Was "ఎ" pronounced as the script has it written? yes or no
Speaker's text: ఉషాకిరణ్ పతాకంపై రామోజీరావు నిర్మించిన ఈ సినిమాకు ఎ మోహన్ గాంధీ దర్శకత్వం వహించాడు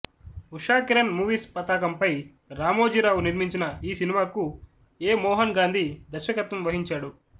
yes